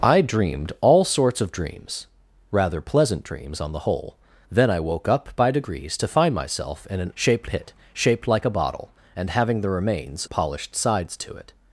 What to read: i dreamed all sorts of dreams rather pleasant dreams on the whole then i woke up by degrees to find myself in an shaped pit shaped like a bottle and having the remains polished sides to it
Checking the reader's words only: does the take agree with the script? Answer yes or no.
yes